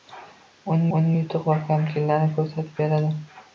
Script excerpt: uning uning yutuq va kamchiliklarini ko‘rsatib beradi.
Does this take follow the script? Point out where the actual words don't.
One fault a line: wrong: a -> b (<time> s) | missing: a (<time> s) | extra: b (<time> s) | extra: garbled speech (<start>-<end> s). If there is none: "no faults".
no faults